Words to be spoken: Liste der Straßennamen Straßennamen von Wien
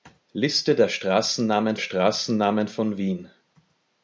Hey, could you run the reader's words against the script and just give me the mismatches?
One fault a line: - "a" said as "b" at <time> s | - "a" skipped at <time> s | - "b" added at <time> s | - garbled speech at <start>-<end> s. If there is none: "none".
none